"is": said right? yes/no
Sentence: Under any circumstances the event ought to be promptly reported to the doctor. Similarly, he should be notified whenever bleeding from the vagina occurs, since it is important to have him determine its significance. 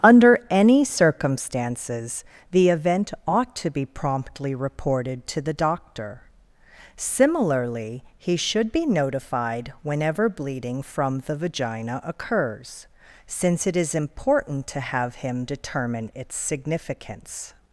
yes